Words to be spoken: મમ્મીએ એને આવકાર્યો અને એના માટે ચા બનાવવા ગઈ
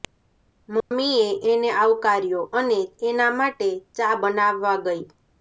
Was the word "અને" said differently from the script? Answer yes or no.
no